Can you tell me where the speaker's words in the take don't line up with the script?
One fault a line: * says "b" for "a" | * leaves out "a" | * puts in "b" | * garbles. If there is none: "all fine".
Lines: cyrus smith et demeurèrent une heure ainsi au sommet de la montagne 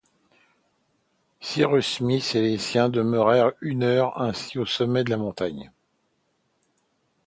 * puts in "les siens"